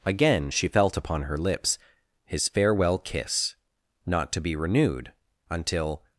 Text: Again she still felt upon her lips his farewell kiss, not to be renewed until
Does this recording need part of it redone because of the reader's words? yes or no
yes